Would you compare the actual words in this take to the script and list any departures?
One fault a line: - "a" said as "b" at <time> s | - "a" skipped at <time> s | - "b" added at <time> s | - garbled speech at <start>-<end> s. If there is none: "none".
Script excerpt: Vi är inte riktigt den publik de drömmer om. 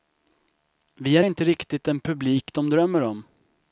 none